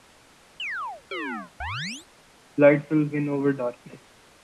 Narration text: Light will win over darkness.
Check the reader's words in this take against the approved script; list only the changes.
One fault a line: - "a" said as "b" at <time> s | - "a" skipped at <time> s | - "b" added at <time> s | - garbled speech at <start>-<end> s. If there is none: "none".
none